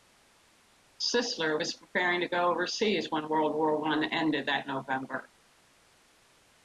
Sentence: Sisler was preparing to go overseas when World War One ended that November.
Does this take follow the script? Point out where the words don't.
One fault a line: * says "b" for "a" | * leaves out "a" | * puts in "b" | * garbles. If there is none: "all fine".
all fine